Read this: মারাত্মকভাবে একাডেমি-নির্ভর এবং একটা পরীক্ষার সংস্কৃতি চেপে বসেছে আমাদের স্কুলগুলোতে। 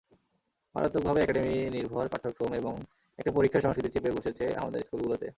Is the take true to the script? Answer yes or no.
no